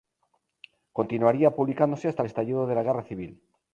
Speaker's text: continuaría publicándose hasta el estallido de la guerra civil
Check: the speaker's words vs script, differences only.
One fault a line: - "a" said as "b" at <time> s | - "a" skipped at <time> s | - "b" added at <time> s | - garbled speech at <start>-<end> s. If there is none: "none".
none